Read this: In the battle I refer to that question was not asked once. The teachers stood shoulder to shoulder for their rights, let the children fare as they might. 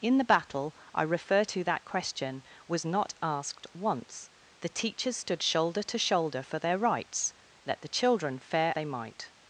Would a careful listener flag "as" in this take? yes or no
yes